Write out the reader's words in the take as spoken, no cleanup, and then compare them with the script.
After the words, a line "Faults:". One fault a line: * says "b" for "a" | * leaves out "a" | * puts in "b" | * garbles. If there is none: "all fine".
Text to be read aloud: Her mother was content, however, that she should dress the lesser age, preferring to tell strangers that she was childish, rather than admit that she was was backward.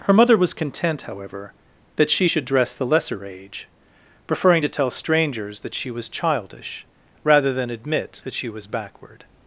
Her mother was content, however, that she should dress the lesser age, preferring to tell strangers that she was childish, rather than admit that she was backward.
Faults:
* leaves out "was"